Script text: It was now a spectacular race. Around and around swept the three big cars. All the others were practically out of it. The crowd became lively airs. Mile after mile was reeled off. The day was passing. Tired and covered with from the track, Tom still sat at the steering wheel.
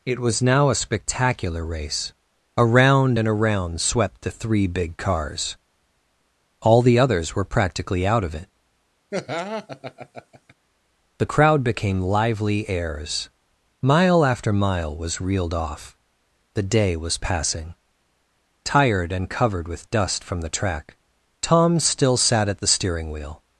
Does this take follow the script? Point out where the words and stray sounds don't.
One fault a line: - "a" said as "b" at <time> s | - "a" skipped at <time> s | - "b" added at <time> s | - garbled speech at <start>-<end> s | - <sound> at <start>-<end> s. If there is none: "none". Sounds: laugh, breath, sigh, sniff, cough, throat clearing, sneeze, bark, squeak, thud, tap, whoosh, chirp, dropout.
- laugh at 9.1-10.5 s
- "dust" added at 19.9 s